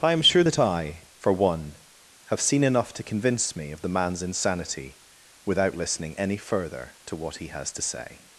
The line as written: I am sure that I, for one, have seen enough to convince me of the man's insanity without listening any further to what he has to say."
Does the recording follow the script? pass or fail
pass